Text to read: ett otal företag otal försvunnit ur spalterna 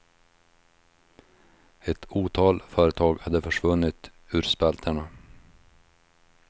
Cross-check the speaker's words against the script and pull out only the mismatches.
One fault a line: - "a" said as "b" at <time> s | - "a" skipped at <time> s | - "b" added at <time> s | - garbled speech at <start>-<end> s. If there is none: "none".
- "otal" said as "hade" at 3.2 s